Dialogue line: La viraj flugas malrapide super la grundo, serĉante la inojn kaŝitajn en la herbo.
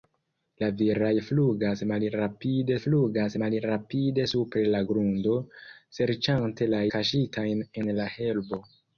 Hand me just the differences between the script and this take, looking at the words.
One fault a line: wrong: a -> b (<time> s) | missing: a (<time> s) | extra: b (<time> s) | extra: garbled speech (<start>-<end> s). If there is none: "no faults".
extra: flugas malrapide (2.8 s)
missing: inojn (6.8 s)